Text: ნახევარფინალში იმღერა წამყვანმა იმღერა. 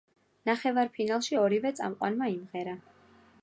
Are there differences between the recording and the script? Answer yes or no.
yes